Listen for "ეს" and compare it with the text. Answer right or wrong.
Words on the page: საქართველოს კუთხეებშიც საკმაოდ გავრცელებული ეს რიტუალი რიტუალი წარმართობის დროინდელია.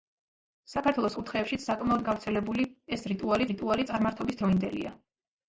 right